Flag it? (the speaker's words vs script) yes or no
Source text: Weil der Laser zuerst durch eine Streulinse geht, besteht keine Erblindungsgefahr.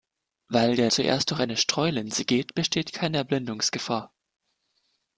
yes